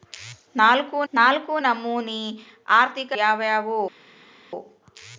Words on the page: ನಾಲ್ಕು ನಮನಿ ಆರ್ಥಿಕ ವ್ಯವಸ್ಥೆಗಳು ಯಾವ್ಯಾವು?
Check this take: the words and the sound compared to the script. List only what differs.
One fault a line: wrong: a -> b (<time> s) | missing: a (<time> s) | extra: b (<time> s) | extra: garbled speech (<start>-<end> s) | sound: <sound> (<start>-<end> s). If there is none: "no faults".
extra: ನಾಲ್ಕು (1.1 s)
missing: ವ್ಯವಸ್ಥೆಗಳು (3.1 s)